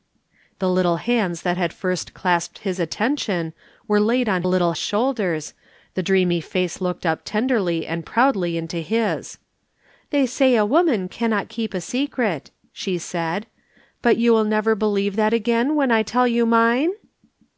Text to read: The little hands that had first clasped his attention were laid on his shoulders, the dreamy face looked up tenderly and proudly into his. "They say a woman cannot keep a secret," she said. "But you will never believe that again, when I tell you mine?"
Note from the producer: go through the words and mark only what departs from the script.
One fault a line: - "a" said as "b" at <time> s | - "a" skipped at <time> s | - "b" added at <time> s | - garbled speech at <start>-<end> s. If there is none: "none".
- "his" said as "little" at 4.4 s